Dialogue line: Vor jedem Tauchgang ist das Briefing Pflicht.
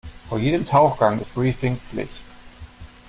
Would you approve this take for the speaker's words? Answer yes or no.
no